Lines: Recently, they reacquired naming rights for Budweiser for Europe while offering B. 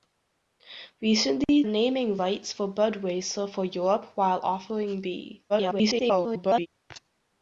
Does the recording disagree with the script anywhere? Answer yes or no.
yes